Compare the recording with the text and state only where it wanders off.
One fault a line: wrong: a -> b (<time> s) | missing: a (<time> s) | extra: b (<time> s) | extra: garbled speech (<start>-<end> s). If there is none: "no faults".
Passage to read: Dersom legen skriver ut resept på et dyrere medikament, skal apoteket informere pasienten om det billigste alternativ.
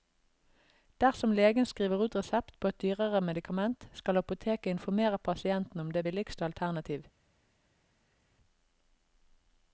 no faults